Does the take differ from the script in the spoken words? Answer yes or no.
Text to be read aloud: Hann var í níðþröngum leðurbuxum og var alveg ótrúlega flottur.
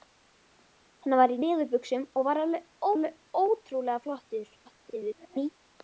yes